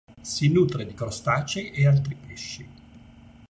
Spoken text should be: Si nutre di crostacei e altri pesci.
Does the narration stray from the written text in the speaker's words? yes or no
no